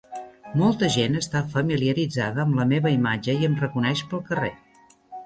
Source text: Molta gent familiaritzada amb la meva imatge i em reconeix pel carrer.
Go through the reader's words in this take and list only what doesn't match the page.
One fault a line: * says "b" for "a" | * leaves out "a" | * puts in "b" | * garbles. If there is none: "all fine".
* puts in "està"